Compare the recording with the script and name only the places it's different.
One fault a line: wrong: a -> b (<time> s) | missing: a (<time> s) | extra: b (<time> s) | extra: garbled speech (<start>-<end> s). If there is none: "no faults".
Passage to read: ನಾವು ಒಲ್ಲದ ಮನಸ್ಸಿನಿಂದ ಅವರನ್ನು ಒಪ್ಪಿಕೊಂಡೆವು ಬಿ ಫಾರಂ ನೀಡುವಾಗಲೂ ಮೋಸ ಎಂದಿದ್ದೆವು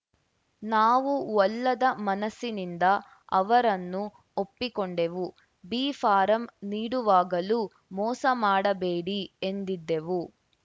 extra: ಮಾಡಬೇಡಿ (8.4 s)